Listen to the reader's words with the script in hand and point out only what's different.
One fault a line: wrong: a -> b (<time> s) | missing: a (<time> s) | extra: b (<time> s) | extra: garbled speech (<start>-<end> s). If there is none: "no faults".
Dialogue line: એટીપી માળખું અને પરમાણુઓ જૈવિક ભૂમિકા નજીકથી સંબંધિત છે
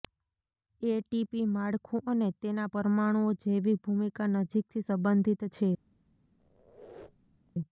extra: તેના (2.4 s)